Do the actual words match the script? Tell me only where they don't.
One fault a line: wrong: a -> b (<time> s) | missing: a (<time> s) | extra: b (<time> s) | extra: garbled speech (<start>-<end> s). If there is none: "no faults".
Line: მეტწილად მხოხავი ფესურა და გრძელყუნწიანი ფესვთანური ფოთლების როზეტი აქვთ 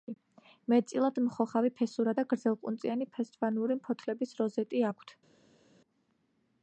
no faults